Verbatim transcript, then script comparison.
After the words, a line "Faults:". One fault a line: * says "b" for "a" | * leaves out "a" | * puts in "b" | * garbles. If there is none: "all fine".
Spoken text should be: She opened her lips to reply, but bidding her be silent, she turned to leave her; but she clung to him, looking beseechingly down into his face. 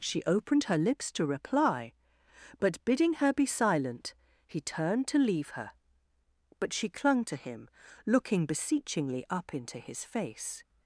She opened her lips to reply, but bidding her be silent, he turned to leave her; but she clung to him, looking beseechingly up into his face.
Faults:
* says "he" for "she"
* says "up" for "down"